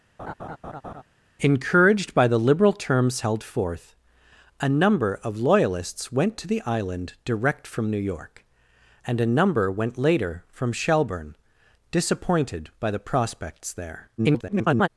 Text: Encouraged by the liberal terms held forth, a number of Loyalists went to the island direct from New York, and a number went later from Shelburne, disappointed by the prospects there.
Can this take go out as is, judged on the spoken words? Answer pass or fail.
fail